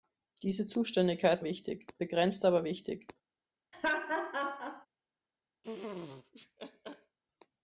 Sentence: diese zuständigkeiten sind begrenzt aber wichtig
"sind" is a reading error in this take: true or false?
true